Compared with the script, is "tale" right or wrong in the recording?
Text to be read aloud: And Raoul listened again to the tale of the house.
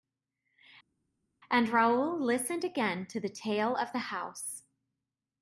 right